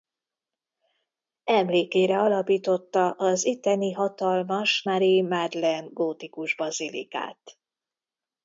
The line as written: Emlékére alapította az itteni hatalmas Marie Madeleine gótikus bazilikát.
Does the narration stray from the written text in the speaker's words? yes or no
no